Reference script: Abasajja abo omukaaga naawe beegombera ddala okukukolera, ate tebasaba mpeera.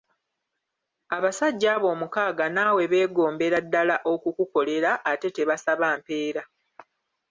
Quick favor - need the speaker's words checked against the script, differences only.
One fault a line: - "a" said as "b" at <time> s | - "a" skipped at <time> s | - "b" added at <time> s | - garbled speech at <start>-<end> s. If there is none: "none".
none